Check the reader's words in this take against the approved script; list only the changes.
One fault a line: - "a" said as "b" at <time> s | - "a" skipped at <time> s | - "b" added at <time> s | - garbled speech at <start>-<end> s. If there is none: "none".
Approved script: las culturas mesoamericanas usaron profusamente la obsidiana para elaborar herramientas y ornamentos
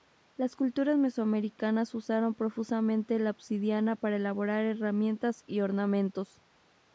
none